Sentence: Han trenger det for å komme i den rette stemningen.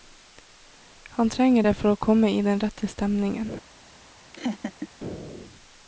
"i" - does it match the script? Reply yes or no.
yes